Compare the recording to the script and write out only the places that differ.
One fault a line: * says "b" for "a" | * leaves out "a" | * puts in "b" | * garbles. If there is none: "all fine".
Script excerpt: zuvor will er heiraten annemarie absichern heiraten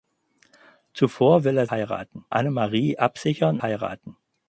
all fine